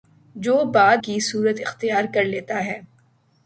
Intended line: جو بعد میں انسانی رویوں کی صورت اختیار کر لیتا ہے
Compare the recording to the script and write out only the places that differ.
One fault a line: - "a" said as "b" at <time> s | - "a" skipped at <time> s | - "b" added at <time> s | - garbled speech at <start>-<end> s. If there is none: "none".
- "میں انسانی رویوں" skipped at 1.0 s